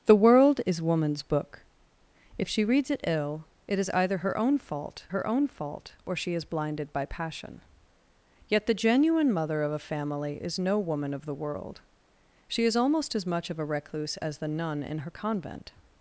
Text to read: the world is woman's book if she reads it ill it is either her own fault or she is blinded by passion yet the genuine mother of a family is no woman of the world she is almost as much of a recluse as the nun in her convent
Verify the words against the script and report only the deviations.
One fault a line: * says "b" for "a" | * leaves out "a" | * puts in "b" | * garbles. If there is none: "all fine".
* puts in "her own fault"